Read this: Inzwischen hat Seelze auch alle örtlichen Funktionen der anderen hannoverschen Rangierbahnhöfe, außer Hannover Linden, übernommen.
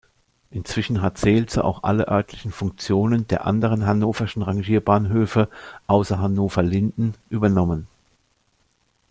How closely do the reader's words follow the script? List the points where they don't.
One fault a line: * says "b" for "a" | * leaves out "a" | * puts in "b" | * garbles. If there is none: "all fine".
all fine